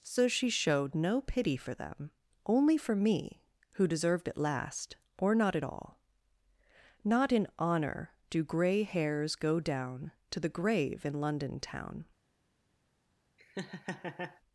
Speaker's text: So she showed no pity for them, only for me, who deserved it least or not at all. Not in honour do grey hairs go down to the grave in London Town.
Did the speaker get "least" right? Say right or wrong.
wrong